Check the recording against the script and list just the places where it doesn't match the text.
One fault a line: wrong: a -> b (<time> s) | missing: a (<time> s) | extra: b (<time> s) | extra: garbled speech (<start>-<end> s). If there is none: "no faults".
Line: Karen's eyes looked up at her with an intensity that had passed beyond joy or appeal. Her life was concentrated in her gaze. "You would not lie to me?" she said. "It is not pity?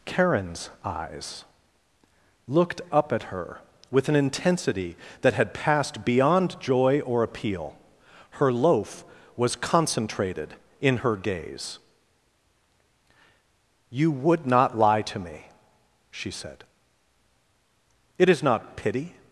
wrong: life -> loaf (8.5 s)